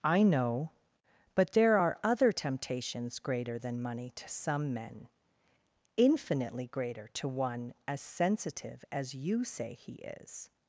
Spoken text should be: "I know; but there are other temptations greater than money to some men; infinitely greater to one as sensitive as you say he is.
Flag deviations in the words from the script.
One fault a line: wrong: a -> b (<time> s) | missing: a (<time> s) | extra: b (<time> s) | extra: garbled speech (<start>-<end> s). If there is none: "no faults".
no faults